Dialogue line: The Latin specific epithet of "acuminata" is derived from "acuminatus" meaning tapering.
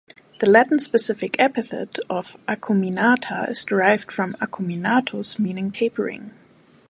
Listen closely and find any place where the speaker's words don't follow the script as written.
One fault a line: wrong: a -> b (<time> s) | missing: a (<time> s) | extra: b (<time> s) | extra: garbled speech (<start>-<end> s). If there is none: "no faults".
no faults